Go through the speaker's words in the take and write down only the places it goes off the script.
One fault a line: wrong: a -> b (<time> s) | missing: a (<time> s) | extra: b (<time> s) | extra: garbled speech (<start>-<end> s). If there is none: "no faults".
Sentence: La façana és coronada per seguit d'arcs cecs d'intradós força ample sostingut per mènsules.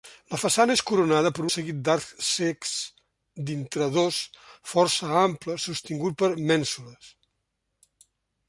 no faults